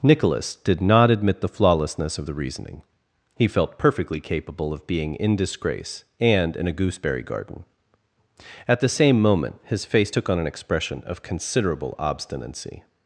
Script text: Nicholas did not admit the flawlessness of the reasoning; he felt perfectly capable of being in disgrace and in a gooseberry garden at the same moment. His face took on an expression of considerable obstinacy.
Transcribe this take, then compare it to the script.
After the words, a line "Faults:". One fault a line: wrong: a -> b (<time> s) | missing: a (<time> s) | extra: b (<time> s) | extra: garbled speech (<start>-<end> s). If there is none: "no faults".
Nicholas did not admit the flawlessness of the reasoning; he felt perfectly capable of being in disgrace and in a gooseberry garden at the same moment. His face took on an expression of considerable obstinacy.
Faults:
no faults